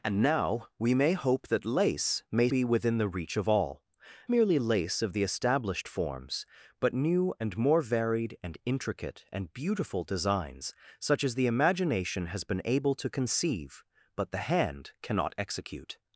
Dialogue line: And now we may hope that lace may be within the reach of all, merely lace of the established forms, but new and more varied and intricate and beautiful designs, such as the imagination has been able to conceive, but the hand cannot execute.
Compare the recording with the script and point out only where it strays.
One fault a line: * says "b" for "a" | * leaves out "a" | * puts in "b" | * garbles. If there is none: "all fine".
all fine